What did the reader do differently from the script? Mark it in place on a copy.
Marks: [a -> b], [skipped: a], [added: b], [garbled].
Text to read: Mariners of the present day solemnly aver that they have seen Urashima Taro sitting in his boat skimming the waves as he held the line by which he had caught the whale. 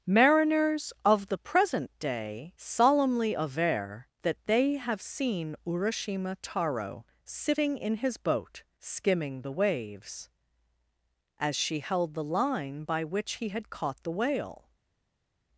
Mariners of the present day solemnly aver that they have seen Urashima Taro sitting in his boat skimming the waves as [he -> she] held the line by which he had caught the whale.